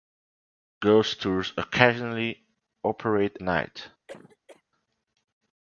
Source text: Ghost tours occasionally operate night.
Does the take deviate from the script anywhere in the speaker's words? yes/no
no